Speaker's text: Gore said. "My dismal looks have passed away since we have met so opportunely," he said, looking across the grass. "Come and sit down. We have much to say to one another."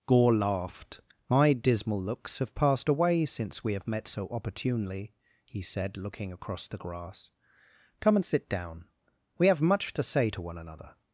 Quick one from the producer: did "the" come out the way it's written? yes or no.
yes